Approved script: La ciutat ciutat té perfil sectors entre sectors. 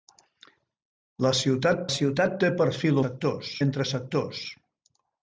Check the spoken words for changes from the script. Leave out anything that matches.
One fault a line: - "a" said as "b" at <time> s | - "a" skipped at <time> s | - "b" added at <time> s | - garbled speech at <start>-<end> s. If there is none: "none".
none